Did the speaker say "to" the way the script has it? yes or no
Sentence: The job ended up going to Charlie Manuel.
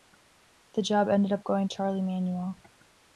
no